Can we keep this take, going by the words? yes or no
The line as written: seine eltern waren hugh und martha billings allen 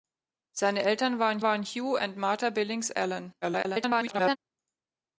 no